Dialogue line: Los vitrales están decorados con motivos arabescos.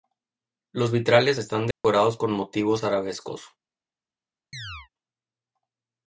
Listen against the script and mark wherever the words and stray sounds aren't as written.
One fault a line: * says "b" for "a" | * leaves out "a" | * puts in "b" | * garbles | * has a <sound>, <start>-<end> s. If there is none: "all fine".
* has a dropout, 1.7-1.8 s
* has a chirp, 4.5-4.9 s